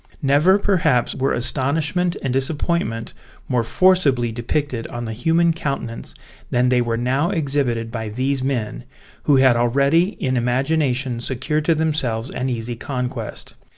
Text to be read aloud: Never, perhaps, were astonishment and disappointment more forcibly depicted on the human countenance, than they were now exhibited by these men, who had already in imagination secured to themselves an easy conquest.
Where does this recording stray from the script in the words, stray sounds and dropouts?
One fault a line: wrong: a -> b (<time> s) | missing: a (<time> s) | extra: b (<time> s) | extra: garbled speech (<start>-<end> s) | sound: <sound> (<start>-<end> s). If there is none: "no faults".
no faults